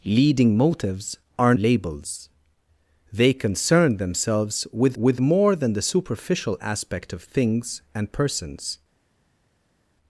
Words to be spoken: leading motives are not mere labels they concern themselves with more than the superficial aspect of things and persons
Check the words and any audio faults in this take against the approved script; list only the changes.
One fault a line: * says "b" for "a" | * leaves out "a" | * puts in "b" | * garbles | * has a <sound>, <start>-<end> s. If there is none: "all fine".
* leaves out "not mere"
* puts in "with"